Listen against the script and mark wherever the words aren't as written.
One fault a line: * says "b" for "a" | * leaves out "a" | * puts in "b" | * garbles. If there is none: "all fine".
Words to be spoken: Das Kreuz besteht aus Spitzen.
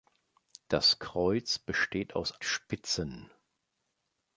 all fine